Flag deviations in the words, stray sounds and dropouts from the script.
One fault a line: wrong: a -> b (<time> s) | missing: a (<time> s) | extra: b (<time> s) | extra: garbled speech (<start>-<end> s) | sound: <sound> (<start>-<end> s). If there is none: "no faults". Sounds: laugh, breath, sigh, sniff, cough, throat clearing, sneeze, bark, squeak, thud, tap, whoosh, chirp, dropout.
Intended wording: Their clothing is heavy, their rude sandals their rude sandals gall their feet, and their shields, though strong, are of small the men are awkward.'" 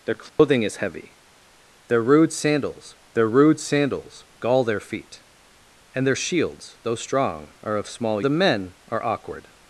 sound: dropout (0.3-0.4 s)